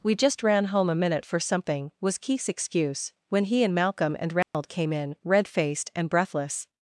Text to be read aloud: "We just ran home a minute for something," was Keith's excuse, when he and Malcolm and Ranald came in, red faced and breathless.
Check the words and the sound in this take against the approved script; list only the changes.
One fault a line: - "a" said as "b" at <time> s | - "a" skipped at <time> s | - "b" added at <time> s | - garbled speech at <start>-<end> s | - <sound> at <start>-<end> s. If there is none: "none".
- dropout at 4.4-4.5 s